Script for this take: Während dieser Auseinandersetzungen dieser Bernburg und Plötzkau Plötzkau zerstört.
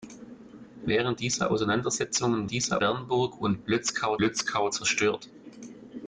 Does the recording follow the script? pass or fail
pass